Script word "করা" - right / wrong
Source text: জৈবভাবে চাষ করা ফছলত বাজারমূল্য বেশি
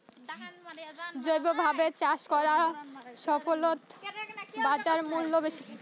right